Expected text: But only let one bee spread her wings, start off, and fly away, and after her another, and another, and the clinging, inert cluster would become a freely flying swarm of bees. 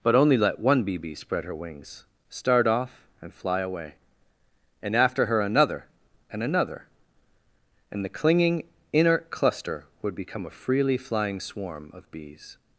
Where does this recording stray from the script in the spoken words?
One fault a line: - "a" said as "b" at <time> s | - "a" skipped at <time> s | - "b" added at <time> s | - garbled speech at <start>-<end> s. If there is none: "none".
- "bee" added at 1.0 s